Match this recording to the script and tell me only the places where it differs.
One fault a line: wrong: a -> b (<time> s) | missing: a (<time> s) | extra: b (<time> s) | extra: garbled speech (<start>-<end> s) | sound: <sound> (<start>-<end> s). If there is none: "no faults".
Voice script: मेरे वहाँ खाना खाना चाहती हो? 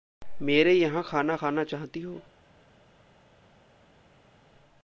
wrong: वहाँ -> यहाँ (0.7 s)